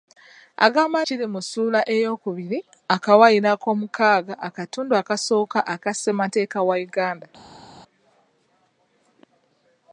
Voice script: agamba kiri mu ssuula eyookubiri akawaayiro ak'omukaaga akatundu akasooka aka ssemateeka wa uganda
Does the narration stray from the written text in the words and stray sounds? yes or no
no